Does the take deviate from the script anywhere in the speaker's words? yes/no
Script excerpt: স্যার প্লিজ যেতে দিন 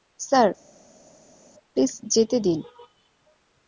no